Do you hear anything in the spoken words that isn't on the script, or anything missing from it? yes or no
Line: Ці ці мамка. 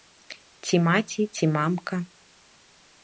yes